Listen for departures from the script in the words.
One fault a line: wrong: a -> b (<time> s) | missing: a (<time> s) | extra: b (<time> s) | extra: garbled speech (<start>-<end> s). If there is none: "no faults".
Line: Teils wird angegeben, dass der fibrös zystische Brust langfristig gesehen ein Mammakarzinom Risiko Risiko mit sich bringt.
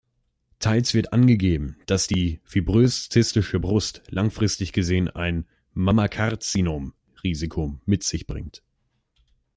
wrong: der -> die (2.0 s)
missing: Risiko (7.8 s)